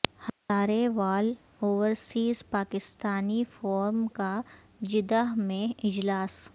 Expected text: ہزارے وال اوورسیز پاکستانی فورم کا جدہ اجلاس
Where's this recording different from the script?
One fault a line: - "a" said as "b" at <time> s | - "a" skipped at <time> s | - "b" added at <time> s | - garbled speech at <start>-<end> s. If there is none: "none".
- "میں" added at 5.4 s